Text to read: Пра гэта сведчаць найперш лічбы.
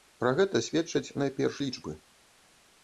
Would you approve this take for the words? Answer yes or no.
yes